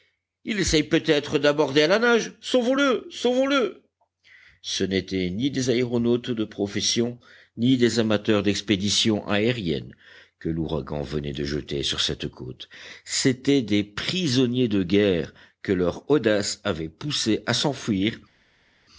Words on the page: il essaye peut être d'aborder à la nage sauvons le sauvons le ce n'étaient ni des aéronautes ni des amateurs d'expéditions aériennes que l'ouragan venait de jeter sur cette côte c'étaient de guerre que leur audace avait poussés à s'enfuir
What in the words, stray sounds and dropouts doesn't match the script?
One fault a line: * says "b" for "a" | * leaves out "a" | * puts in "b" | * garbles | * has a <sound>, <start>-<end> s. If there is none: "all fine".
* puts in "de profession"
* puts in "des prisonniers"